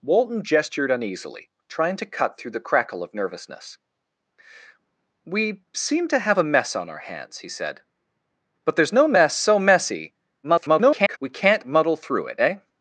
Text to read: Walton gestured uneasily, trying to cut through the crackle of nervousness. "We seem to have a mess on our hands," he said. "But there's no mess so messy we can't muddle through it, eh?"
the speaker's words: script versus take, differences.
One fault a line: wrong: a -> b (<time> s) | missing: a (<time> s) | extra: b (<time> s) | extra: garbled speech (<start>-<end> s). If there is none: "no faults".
extra: garbled speech (10.4-11.2 s)